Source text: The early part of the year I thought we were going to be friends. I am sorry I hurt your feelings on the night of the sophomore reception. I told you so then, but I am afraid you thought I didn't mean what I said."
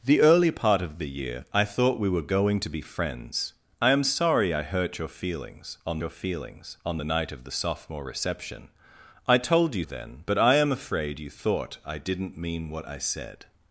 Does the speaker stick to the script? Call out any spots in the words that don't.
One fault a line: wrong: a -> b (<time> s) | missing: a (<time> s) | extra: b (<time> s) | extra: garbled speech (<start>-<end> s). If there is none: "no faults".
extra: your feelings on (6.0 s)
missing: so (9.9 s)